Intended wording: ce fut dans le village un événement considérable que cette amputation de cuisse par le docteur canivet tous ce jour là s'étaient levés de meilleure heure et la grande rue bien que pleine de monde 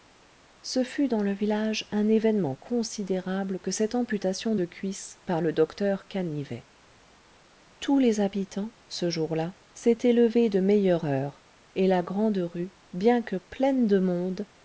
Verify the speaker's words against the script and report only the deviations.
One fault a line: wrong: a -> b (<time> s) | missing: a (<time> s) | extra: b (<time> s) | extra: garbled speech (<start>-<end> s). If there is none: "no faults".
extra: les habitants (8.0 s)